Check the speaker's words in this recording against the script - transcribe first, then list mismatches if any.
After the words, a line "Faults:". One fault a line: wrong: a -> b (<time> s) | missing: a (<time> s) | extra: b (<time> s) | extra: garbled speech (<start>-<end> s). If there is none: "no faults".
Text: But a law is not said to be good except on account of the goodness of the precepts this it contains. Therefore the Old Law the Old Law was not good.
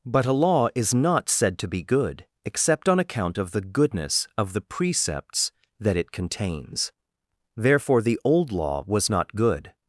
But a law is not said to be good except on account of the goodness of the precepts that it contains. Therefore the Old Law was not good.
Faults:
wrong: this -> that (5.8 s)
missing: the Old Law (8.8 s)